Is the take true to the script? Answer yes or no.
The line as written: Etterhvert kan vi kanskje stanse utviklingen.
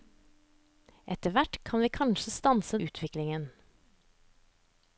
yes